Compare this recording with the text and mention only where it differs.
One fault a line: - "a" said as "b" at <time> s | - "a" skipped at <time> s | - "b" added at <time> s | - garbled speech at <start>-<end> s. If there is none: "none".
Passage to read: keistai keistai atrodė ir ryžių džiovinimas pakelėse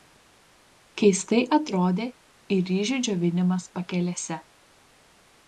- "keistai" skipped at 1.4 s